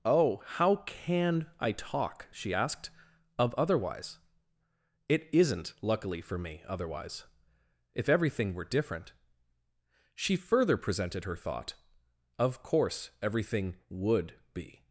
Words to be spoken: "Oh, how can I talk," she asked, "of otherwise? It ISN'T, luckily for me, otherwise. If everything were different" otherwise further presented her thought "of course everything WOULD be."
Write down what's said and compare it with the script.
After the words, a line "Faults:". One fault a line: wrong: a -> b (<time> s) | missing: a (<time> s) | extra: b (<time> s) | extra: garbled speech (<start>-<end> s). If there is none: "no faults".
"Oh, how can I talk," she asked, "of otherwise? It ISN'T, luckily for me, otherwise. If everything were different" she further presented her thought "of course everything WOULD be."
Faults:
wrong: otherwise -> she (10.1 s)